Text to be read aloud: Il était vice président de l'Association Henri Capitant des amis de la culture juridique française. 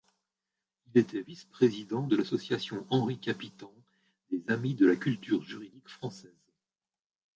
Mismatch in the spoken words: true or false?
false